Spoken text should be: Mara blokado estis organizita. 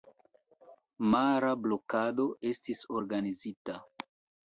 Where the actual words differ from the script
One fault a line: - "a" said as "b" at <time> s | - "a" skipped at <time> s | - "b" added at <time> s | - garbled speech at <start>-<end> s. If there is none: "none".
none